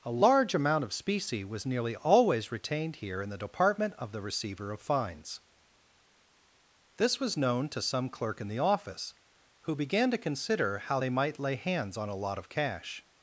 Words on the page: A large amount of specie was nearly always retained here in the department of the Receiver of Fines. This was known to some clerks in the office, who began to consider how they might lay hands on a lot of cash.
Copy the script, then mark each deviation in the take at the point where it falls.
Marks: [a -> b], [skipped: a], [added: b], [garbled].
A large amount of specie was nearly always retained here in the department of the Receiver of Fines. This was known to some [clerks -> clerk] in the office, who began to consider how they might lay hands on a lot of cash.